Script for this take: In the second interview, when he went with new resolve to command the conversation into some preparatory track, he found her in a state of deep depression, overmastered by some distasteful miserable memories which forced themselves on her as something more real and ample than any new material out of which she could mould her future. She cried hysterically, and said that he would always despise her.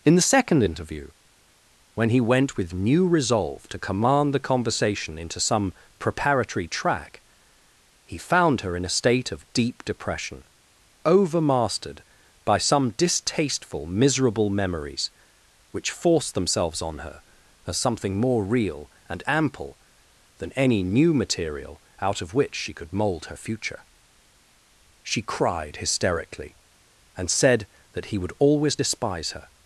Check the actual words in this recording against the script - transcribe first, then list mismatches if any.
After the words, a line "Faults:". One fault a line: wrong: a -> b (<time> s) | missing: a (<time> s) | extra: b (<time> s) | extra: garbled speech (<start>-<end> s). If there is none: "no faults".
In the second interview, when he went with new resolve to command the conversation into some preparatory track, he found her in a state of deep depression, overmastered by some distasteful miserable memories which forced themselves on her as something more real and ample than any new material out of which she could mould her future. She cried hysterically, and said that he would always despise her.
Faults:
no faults